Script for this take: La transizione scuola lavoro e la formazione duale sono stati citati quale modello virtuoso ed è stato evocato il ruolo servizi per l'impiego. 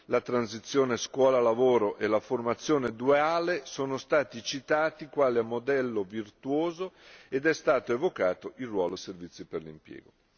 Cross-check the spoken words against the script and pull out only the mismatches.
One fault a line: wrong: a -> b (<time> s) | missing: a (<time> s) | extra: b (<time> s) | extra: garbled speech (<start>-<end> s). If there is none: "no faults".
no faults